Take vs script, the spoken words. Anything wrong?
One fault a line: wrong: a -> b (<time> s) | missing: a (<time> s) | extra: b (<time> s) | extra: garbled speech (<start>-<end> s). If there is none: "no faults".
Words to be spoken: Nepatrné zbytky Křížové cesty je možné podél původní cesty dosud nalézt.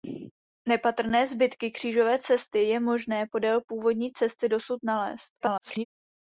extra: garbled speech (5.4-5.9 s)